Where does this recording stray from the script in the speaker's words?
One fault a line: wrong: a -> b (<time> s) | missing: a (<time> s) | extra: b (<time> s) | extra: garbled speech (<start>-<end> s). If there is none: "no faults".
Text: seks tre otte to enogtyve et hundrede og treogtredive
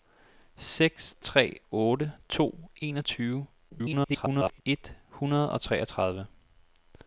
extra: garbled speech (3.7-4.6 s)